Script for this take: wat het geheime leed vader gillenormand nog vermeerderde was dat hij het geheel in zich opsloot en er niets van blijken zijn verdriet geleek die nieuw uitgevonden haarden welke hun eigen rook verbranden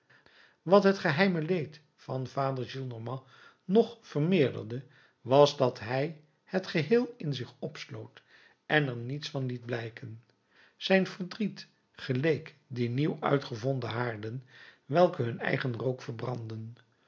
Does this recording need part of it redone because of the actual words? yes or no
yes